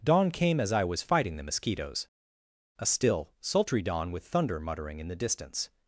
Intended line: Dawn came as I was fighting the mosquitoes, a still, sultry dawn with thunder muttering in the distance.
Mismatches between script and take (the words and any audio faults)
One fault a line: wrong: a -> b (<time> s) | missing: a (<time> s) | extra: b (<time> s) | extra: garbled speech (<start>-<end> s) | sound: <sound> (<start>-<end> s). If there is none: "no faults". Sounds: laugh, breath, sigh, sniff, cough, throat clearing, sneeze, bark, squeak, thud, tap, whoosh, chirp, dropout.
no faults